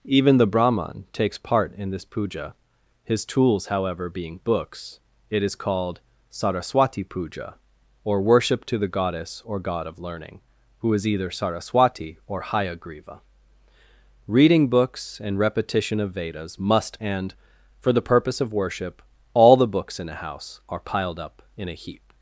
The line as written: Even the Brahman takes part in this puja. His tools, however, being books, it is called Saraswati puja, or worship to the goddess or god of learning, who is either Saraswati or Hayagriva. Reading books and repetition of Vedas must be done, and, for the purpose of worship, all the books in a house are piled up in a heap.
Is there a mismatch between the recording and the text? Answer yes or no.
yes